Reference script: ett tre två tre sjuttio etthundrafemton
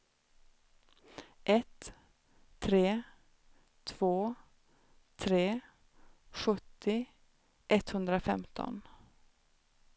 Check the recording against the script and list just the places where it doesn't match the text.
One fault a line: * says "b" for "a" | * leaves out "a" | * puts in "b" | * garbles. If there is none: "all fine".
all fine